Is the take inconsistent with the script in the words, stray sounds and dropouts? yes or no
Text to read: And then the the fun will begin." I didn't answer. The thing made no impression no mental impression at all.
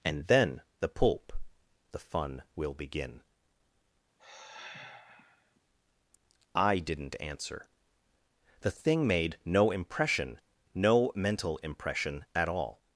yes